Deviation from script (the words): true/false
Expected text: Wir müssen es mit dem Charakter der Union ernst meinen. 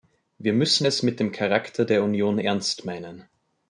false